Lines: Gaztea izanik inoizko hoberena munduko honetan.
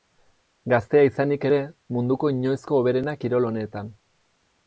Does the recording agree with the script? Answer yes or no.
no